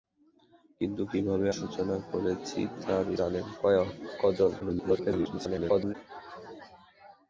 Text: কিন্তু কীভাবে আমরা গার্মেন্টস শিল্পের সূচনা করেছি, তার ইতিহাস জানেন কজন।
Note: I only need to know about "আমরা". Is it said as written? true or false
false